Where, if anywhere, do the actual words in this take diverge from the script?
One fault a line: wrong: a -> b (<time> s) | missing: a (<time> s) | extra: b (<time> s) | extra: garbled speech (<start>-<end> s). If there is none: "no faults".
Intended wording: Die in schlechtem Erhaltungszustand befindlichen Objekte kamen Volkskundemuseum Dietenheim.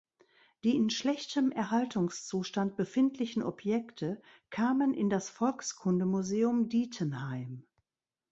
extra: in das (5.0 s)